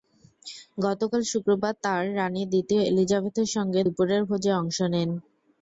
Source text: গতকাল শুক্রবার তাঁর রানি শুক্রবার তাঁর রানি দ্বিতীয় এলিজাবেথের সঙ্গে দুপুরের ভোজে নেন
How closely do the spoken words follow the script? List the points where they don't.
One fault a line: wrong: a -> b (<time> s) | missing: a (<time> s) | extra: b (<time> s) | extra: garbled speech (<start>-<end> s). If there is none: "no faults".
missing: শুক্রবার তাঁর রানি (2.4 s)
extra: অংশ (4.6 s)